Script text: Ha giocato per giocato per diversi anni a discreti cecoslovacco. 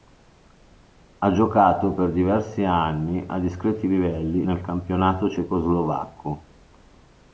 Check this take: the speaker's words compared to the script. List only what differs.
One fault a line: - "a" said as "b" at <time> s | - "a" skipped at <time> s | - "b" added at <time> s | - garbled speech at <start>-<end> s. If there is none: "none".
- "giocato per" skipped at 2.1 s
- "livelli nel campionato" added at 3.9 s